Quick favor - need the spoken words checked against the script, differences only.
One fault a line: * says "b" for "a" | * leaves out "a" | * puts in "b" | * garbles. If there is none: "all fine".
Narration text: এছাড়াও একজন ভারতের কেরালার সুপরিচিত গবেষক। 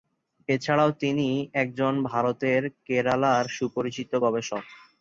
* puts in "তিনি"